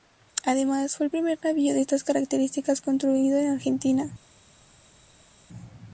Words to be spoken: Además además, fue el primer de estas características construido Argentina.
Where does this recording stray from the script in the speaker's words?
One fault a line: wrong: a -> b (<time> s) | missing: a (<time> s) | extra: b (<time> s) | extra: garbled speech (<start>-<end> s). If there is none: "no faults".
missing: además (1.0 s)
extra: navío (1.4 s)
extra: en (3.4 s)